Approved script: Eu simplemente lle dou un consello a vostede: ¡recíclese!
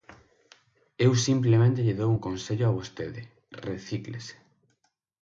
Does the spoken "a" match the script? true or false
true